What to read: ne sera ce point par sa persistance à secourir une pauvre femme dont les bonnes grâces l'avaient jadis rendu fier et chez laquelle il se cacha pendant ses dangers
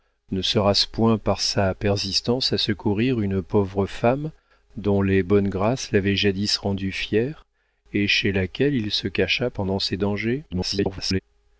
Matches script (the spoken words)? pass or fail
fail